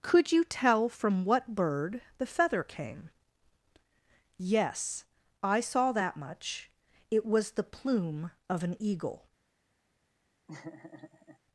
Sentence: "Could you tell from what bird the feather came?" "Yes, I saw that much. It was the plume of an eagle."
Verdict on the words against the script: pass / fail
pass